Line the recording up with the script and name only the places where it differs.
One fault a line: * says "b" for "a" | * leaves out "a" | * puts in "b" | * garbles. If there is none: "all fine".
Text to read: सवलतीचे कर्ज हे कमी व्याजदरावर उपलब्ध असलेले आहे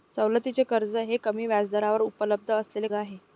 all fine